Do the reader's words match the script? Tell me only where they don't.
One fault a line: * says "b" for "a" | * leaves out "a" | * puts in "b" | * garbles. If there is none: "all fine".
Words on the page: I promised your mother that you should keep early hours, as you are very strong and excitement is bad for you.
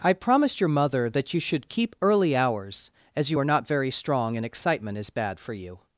* puts in "not"